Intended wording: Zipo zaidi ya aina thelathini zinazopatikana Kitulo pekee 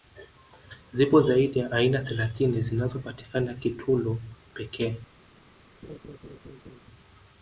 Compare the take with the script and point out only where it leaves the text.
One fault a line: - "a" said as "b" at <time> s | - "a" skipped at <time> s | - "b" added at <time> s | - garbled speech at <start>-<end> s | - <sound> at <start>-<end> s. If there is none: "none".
- laugh at 5.8-6.8 s